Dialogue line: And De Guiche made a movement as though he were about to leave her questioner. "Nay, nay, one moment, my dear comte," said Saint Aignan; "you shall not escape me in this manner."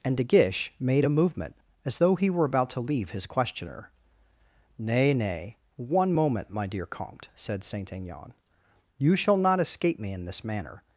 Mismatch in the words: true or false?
true